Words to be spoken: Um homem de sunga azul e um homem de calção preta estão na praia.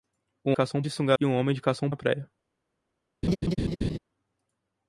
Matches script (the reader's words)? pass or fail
fail